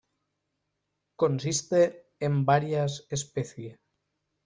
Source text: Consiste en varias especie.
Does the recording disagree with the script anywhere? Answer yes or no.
no